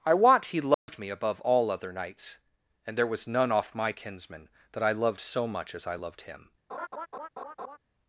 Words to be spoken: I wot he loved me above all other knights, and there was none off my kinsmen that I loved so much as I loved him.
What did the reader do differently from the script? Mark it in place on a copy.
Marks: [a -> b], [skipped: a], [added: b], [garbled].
I wot he loved me above all other knights, and there was none off my kinsmen that I loved so much as I loved him.